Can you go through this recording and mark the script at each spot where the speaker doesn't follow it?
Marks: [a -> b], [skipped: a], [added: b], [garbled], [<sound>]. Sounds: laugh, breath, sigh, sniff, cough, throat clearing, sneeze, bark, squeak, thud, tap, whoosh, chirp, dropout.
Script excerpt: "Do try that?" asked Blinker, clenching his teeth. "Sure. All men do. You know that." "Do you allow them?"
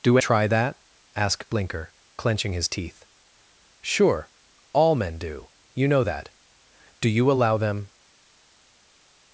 "Do try that?" asked Blinker, clenching his teeth. "Sure. All men do. You know that." "Do you allow them?"